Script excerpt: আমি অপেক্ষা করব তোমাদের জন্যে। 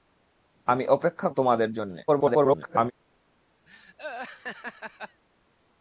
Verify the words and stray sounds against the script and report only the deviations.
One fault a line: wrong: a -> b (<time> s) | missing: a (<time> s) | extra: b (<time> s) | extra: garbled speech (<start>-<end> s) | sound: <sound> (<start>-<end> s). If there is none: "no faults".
missing: করব (1.3 s)
extra: garbled speech (2.1-2.9 s)
sound: laugh (3.7-5.2 s)